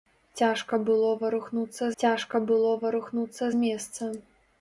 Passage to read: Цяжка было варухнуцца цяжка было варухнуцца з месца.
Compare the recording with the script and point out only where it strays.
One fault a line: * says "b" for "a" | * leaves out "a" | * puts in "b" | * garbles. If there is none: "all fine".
all fine